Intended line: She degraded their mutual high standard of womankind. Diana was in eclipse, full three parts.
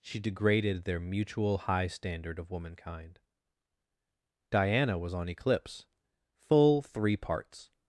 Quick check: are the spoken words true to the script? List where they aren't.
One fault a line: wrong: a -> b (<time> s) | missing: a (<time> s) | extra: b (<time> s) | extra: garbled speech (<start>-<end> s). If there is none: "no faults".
wrong: in -> on (5.1 s)